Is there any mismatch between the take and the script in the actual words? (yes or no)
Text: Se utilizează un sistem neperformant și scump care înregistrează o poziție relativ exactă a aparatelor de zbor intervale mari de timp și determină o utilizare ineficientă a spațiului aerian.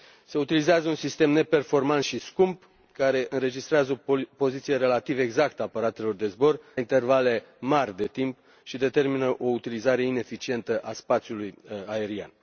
no